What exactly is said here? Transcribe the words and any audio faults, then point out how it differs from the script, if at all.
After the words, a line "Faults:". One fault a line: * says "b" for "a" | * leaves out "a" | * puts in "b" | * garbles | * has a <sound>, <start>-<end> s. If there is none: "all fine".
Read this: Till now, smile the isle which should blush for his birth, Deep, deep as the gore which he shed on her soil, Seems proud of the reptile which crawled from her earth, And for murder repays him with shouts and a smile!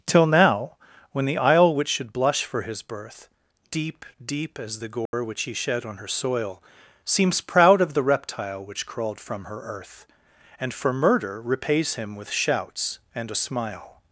Till now, when the isle which should blush for his birth, Deep, deep as the gore which he shed on her soil, Seems proud of the reptile which crawled from her earth, And for murder repays him with shouts and a smile!
Faults:
* says "when" for "smile"
* has a dropout, 5.1-5.1 s